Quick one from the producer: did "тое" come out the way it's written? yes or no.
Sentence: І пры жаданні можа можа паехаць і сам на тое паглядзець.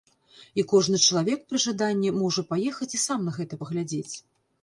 no